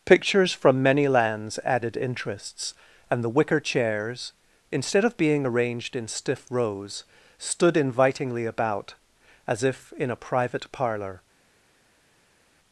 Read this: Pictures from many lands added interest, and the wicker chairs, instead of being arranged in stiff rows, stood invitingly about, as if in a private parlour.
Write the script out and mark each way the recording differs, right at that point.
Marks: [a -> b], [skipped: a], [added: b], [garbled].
Pictures from many lands added [interest, -> interests] and the wicker chairs, instead of being arranged in stiff rows, stood invitingly about, as if in a private parlour.